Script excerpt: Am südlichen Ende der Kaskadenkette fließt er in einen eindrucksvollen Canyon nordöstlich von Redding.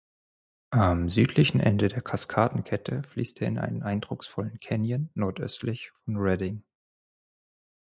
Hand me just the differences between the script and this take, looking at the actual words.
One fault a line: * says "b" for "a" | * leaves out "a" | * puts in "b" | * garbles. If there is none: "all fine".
all fine